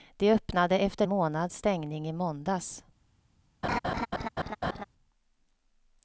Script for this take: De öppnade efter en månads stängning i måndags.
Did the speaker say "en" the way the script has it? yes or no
no